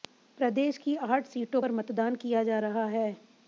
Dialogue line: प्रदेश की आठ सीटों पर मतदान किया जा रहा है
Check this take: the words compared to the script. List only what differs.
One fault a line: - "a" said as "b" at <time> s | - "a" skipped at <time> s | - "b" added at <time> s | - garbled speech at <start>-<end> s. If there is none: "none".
none